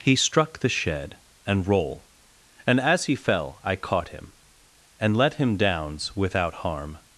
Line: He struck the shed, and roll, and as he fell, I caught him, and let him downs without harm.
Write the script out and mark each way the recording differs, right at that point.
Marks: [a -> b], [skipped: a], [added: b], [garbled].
He struck the shed, and roll, and as he fell, I caught him, and let him downs without harm.